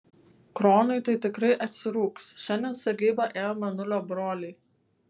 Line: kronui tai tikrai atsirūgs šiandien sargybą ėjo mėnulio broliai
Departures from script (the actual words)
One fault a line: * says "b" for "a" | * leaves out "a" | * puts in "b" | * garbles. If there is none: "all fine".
all fine